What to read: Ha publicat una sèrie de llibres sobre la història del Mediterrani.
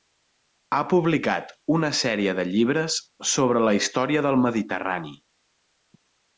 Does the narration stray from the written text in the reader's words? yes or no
no